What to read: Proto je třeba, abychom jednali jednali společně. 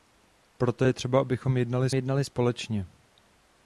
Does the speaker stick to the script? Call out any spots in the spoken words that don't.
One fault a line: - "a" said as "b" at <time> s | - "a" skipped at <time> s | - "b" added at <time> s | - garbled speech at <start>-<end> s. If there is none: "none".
none